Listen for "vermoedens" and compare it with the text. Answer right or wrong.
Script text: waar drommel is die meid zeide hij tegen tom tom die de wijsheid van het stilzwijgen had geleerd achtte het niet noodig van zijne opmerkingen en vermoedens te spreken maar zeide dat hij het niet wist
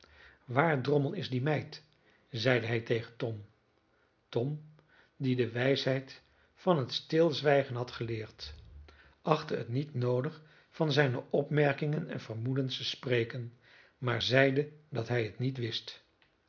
right